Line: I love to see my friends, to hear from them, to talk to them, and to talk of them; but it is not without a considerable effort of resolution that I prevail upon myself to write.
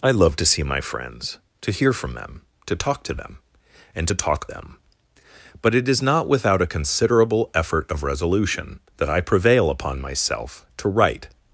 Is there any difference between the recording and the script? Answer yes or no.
yes